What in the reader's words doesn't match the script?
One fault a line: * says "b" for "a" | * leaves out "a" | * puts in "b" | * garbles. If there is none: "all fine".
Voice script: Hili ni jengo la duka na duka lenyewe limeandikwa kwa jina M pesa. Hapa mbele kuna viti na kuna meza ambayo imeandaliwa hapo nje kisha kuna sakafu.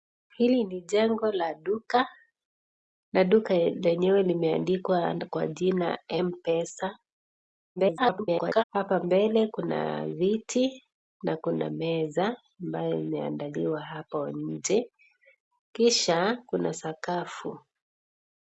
* garbles